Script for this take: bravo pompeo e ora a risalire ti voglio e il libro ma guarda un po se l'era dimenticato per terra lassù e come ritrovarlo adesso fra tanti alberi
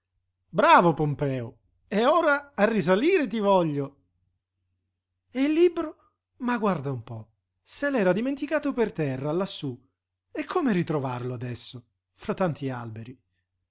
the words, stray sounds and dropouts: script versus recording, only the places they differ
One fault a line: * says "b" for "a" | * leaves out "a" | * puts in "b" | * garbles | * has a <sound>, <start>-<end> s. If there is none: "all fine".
all fine